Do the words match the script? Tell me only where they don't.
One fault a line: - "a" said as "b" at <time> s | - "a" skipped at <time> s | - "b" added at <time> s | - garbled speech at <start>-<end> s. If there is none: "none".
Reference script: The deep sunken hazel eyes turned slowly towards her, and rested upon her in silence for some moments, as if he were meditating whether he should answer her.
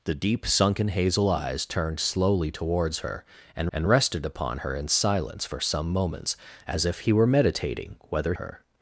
- "and" added at 3.7 s
- "he should answer" skipped at 8.3 s